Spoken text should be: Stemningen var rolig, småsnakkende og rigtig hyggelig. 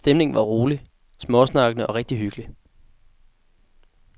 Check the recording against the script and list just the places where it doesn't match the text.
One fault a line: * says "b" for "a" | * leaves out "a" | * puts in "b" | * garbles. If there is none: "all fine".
all fine